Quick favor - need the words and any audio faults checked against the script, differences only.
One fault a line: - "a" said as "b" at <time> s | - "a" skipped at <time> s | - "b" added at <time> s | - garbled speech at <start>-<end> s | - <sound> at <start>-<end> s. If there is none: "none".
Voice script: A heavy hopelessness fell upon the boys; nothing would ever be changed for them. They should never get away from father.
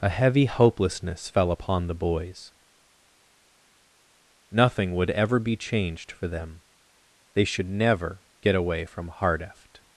- "father" said as "hardeft" at 9.1 s